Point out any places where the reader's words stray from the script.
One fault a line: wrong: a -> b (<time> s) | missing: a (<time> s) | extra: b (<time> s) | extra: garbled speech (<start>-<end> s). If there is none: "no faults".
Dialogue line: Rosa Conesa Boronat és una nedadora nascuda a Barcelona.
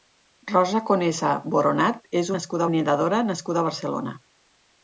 wrong: una -> nascuda (2.3 s)